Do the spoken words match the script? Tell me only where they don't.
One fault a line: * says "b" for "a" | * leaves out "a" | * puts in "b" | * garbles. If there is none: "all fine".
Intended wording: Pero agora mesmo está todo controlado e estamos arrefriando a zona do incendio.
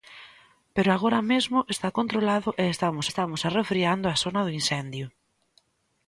* leaves out "todo"
* puts in "estamos"